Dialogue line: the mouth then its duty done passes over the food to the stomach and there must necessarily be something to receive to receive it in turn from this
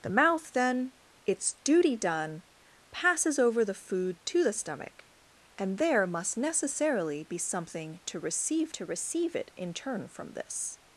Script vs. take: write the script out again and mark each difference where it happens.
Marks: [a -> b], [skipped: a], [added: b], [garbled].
the mouth then its duty done passes over the food to the stomach and there must necessarily be something to receive to receive it in turn from this